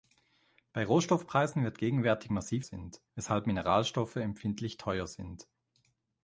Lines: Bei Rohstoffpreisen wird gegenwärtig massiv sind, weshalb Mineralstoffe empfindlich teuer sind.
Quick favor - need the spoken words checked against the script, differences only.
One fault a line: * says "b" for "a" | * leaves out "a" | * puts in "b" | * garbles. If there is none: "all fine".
all fine